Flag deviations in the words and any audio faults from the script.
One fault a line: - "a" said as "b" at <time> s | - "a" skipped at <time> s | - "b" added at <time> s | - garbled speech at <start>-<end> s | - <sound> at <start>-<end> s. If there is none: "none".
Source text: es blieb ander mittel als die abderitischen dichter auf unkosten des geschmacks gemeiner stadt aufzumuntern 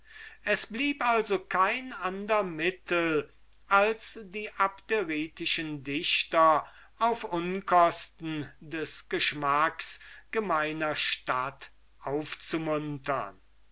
- "also kein" added at 1.1 s